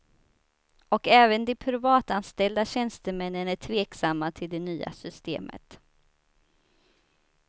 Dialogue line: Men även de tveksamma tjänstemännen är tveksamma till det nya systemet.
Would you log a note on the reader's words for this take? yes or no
yes